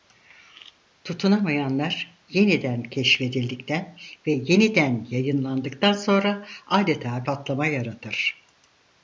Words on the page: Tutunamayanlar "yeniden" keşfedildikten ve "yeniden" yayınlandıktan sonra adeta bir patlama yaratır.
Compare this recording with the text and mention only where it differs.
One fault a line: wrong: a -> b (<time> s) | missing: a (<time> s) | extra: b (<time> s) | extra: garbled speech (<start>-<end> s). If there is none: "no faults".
missing: bir (7.3 s)